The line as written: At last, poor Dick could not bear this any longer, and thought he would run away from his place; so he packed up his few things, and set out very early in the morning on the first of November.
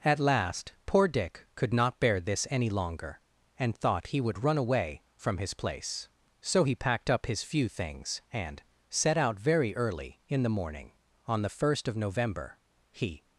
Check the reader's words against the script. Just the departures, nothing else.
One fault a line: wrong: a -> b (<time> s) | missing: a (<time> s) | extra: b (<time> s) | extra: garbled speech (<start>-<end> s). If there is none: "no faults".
extra: He (12.9 s)